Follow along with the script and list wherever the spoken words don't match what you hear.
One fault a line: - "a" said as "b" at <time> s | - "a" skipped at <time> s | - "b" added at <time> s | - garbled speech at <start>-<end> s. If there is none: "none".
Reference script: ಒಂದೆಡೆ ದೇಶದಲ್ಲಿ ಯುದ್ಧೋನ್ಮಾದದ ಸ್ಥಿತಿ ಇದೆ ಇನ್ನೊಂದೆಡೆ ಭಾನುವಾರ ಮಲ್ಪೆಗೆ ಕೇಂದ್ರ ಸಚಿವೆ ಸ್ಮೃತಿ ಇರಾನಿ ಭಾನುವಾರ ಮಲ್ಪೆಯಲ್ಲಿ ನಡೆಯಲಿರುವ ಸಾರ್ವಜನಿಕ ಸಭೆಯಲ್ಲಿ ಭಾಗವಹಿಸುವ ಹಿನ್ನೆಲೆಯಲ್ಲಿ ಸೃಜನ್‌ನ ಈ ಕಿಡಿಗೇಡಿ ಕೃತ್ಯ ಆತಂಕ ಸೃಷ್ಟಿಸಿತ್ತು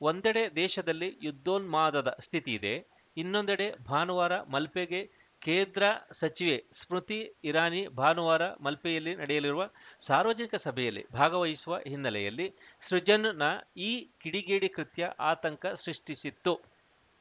none